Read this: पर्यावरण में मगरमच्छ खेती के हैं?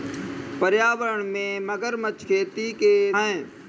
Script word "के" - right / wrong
right